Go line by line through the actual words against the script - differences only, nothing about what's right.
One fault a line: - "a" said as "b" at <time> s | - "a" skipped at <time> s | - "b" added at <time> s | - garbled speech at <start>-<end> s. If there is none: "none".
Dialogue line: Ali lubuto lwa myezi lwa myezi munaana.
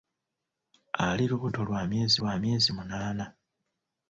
none